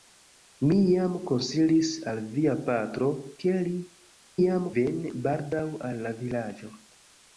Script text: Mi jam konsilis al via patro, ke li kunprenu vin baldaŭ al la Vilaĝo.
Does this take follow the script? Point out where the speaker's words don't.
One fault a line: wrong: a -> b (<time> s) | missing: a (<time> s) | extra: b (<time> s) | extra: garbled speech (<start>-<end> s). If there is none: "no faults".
wrong: kunprenu -> jam (4.4 s)